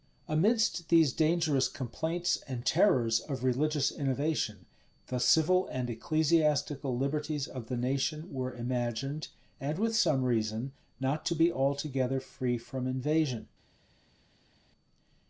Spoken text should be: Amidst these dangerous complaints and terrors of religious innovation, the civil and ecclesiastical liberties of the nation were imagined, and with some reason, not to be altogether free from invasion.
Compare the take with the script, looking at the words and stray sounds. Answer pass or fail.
pass